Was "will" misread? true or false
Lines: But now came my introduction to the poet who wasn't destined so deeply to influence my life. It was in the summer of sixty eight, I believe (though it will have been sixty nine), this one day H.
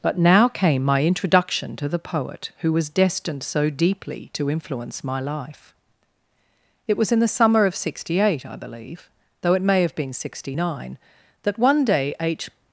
true